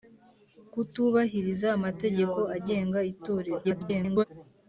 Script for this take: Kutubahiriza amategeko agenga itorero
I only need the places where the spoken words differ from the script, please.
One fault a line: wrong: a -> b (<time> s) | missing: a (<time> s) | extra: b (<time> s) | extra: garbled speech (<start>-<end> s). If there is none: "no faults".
extra: garbled speech (3.6-4.2 s)